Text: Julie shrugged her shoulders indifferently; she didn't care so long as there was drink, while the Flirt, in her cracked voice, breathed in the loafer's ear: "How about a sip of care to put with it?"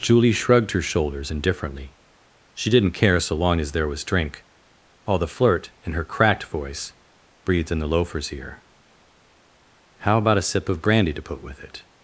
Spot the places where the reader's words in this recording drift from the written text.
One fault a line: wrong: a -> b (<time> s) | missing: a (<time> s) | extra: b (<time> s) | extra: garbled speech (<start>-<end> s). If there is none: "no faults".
wrong: care -> brandy (10.8 s)